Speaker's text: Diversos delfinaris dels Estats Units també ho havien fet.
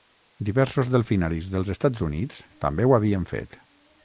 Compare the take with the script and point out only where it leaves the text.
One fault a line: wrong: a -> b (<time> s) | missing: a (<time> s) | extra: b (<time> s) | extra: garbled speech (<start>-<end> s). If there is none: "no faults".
no faults